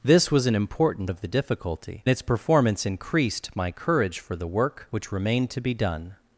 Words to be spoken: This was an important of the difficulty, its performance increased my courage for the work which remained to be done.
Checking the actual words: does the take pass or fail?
pass